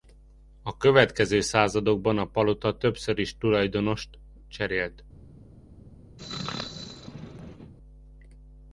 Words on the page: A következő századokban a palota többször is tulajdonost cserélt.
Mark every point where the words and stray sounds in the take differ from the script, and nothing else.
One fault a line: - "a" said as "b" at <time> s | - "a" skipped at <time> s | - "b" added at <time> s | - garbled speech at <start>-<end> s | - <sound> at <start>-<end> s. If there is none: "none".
- sneeze at 6.2-7.7 s